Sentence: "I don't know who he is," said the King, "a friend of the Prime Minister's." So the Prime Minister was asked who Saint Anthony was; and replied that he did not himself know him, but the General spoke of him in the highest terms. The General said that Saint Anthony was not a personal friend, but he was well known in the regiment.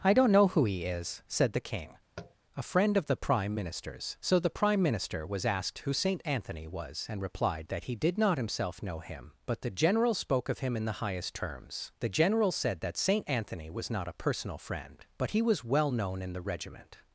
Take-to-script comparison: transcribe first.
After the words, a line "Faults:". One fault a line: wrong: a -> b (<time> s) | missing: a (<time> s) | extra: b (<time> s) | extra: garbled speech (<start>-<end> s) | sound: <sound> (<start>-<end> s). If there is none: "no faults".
"I don't know who he is," said the King, "a friend of the Prime Minister's." So the Prime Minister was asked who Saint Anthony was; and replied that he did not himself know him, but the General spoke of him in the highest terms. The General said that Saint Anthony was not a personal friend, but he was well known in the regiment.
Faults:
sound: tap (2.2-2.3 s)